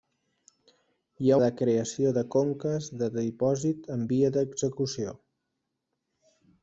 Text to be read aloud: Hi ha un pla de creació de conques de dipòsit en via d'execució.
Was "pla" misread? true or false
true